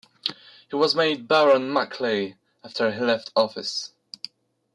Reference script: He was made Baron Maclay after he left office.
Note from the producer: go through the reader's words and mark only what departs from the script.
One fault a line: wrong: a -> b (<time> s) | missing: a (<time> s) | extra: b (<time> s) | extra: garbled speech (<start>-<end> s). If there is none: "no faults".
no faults